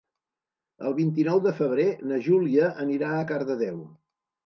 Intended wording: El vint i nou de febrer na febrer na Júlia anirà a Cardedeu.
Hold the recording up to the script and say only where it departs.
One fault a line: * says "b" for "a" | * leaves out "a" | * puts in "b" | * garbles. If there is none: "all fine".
* leaves out "febrer na"